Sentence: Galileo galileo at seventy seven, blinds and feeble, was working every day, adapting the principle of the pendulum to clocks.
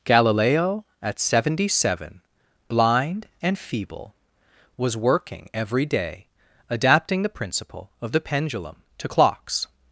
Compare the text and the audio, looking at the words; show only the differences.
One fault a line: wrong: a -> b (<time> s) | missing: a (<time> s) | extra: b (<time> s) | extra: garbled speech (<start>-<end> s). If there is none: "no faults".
missing: galileo (0.9 s)
wrong: blinds -> blind (2.7 s)